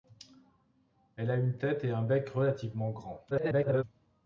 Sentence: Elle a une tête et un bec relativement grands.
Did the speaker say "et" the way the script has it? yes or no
yes